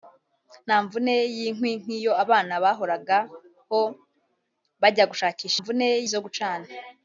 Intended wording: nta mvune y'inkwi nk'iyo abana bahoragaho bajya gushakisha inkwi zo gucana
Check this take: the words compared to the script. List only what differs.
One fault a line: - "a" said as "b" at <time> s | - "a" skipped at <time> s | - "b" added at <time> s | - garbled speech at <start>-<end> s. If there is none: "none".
- "inkwi" said as "mvune" at 5.6 s